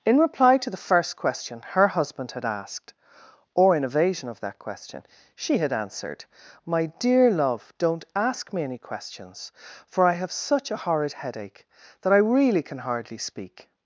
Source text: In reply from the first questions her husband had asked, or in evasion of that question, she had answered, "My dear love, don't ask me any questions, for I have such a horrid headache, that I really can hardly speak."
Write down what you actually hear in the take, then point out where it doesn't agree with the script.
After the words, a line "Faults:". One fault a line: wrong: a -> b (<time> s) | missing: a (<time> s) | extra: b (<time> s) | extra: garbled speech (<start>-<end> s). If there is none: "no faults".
In reply to the first question her husband had asked, or in evasion of that question, she had answered, "My dear love, don't ask me any questions, for I have such a horrid headache, that I really can hardly speak."
Faults:
wrong: from -> to (0.6 s)
wrong: questions -> question (1.1 s)